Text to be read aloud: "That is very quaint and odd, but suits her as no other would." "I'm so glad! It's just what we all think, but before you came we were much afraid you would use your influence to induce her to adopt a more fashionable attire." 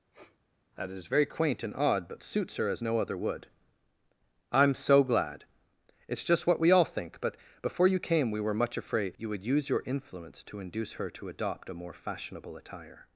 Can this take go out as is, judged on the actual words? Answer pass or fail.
pass